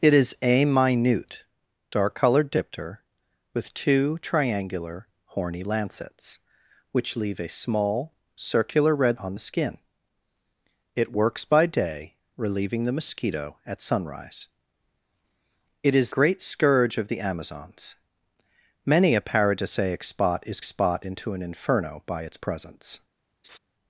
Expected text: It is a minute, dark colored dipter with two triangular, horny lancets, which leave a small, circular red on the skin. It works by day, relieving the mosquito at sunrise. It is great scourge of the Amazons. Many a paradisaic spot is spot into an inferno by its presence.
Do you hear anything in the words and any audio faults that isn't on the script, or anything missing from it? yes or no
yes